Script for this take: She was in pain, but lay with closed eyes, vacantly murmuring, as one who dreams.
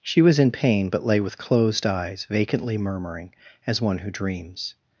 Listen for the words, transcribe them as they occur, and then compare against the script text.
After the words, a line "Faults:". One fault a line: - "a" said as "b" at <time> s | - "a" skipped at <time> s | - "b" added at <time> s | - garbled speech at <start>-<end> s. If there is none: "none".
She was in pain, but lay with closed eyes, vacantly murmuring, as one who dreams.
Faults:
none